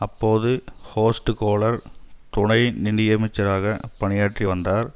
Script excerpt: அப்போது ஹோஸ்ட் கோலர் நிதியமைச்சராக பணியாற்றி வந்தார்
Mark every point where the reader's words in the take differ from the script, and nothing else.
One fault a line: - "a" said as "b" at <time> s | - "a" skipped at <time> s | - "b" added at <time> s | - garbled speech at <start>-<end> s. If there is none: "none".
- "துணை" added at 2.3 s